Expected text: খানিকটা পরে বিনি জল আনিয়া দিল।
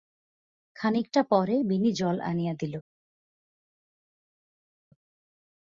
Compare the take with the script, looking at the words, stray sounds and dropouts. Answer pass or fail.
pass